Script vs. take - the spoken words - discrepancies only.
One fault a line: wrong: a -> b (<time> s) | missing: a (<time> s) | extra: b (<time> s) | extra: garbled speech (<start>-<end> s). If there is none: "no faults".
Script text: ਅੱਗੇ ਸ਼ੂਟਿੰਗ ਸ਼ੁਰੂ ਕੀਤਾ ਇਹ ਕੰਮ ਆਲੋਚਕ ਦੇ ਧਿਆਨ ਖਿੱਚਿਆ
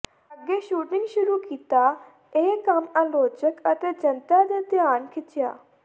extra: ਅਤੇ ਜਨਤਾ (3.7 s)